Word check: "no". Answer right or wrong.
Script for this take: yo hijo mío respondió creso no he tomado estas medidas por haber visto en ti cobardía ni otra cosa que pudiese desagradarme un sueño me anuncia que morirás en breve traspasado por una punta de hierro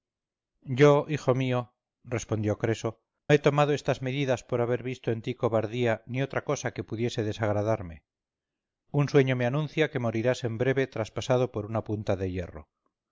wrong